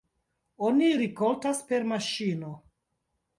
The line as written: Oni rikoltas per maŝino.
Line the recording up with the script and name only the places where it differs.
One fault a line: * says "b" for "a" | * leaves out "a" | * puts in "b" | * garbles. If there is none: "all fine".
all fine